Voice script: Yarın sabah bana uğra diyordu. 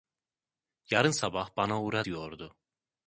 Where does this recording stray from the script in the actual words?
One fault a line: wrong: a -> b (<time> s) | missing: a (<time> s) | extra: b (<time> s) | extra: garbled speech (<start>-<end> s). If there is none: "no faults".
no faults